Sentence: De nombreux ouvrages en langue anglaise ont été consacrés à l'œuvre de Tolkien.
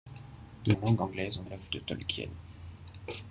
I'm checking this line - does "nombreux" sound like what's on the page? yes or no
no